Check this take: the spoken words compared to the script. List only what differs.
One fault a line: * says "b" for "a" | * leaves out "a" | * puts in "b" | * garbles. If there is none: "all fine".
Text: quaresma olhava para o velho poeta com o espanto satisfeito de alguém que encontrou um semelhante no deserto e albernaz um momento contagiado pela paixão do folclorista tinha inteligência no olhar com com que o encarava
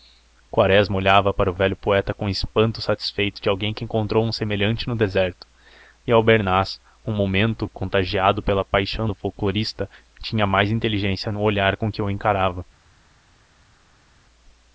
* puts in "mais"
* leaves out "com"